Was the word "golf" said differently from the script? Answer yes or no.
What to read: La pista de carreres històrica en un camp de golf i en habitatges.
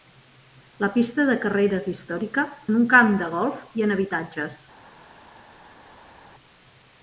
no